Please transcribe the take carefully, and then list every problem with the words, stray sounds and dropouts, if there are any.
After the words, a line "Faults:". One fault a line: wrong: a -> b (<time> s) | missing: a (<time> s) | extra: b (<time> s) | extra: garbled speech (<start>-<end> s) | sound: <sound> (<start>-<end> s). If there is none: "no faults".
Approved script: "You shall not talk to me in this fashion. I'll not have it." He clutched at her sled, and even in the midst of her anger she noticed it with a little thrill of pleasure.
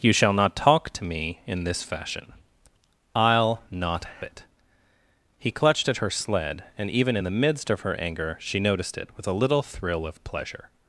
"You shall not talk to me in this fashion. I'll not it." He clutched at her sled, and even in the midst of her anger she noticed it with a little thrill of pleasure.
Faults:
missing: have (4.0 s)